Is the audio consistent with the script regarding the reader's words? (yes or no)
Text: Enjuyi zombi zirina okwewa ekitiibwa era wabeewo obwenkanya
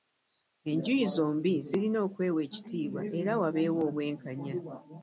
yes